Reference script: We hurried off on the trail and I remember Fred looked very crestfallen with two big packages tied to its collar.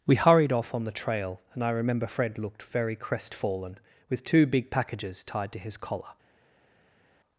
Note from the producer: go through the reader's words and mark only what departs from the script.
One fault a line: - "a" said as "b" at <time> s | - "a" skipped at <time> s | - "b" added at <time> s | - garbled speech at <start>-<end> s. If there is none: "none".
- "its" said as "his" at 5.6 s